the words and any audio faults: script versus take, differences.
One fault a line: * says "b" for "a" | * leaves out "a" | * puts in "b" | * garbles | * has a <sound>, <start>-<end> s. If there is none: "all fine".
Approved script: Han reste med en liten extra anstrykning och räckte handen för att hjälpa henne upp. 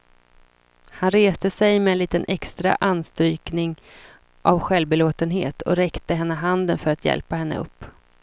* puts in "sig"
* puts in "av självbelåtenhet"
* puts in "henne"